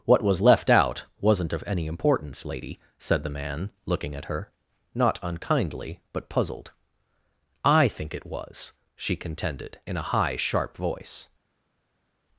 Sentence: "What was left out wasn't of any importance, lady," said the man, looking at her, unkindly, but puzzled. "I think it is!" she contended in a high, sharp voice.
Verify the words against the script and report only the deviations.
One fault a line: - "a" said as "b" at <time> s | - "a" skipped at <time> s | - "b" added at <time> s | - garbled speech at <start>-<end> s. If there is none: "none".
- "not" added at 4.9 s
- "is" said as "was" at 8.2 s